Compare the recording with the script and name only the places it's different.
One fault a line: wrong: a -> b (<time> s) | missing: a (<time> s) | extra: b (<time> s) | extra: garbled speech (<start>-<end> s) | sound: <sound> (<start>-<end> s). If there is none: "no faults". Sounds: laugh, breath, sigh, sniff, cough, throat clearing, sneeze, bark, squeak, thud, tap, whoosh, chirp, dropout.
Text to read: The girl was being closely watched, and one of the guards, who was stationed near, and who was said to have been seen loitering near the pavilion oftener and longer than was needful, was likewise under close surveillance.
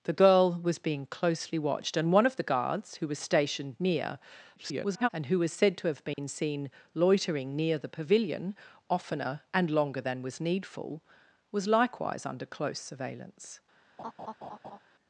extra: garbled speech (4.6-5.1 s)
sound: dropout (6.1-6.2 s)
sound: laugh (14.0-14.8 s)